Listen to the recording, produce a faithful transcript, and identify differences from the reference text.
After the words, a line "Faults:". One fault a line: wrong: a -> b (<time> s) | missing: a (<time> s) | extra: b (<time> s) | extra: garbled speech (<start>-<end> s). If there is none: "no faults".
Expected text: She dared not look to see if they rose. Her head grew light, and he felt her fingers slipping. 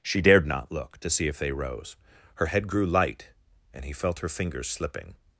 She dared not look to see if they rose. Her head grew light, and he felt her fingers slipping.
Faults:
no faults